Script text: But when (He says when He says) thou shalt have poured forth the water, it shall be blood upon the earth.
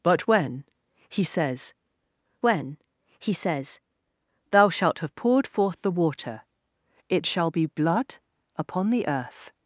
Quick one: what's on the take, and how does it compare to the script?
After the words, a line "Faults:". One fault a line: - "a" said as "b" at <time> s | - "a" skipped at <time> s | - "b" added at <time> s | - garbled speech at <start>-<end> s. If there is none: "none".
But when (He says when He says) thou shalt have poured forth the water, it shall be blood upon the earth.
Faults:
none